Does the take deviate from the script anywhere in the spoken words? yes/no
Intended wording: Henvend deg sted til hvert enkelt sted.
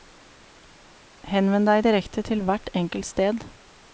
yes